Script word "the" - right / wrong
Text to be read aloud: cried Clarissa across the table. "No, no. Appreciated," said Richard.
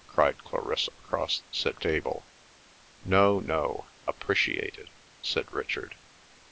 wrong